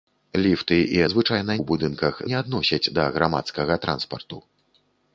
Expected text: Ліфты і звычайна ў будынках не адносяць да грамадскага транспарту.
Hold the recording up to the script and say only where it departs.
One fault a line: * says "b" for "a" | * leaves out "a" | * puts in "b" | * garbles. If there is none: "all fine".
all fine